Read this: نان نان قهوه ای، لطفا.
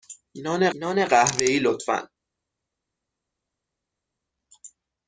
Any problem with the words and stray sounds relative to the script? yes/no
no